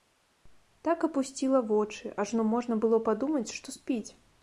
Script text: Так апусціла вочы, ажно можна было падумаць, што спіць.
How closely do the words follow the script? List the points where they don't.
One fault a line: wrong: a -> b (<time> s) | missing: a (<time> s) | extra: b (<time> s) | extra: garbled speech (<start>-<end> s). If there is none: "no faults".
no faults